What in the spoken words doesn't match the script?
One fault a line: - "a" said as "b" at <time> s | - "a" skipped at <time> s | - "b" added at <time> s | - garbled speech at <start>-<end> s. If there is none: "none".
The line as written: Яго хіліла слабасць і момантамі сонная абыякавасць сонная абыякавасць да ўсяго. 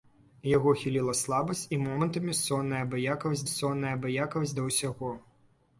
none